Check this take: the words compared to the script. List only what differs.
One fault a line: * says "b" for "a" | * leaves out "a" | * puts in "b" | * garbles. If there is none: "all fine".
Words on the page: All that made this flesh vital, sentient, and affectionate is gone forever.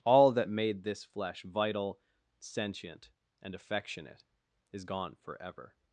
all fine